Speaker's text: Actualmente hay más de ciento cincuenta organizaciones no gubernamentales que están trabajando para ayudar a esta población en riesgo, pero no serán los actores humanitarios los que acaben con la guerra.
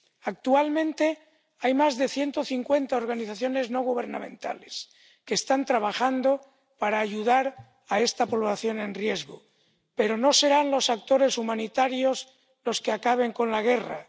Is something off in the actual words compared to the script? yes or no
no